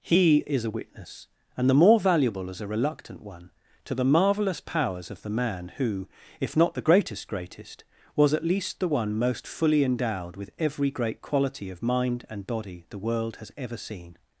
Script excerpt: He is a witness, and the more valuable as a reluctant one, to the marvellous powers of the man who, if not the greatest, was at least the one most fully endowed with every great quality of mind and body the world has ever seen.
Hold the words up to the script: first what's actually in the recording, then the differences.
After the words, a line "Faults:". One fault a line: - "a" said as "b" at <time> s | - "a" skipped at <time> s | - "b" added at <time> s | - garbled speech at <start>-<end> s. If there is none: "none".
He is a witness, and the more valuable as a reluctant one, to the marvellous powers of the man who, if not the greatest greatest, was at least the one most fully endowed with every great quality of mind and body the world has ever seen.
Faults:
- "greatest" added at 7.3 s